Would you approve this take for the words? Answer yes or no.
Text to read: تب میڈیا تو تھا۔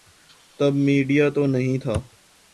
no